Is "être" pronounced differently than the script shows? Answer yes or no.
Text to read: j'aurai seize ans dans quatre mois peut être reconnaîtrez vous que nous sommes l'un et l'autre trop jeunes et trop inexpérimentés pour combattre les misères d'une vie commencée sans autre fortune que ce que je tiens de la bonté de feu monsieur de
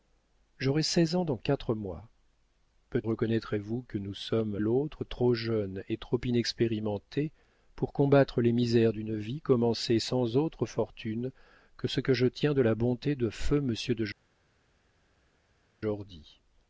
yes